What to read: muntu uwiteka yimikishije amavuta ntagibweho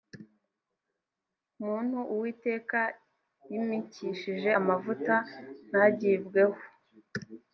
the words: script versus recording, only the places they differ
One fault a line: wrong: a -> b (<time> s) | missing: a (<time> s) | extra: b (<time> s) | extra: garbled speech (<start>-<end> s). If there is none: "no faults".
no faults